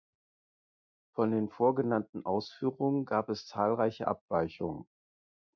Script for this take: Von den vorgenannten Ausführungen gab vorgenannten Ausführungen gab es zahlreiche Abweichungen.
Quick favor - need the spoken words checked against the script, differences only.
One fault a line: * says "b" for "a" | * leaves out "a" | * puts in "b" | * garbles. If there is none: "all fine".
* leaves out "vorgenannten Ausführungen gab"